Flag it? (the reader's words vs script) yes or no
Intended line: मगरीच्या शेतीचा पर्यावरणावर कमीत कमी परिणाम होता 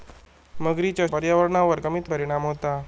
yes